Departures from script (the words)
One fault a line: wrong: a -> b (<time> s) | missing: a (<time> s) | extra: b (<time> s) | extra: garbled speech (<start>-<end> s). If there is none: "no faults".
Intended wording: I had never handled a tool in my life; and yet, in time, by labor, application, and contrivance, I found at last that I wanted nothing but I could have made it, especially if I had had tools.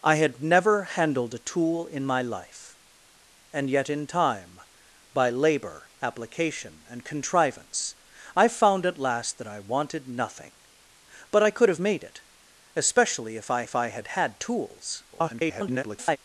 extra: if I (13.6 s)
extra: garbled speech (15.1-16.2 s)